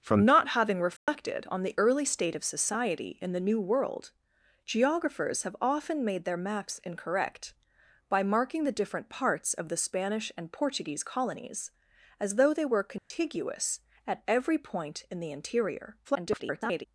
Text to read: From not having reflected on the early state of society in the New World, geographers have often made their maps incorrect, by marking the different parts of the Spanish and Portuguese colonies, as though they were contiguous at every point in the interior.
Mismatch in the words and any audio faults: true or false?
true